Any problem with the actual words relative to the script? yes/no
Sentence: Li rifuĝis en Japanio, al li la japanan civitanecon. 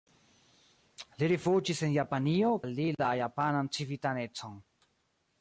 no